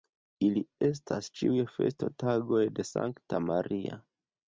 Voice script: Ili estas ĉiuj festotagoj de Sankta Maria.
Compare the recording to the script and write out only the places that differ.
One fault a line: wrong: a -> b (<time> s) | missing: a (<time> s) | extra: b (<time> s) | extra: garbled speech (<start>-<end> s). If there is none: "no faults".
no faults